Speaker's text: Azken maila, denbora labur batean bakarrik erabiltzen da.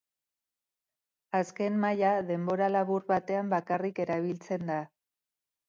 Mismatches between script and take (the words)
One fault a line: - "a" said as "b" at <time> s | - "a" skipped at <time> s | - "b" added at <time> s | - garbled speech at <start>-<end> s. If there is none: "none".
none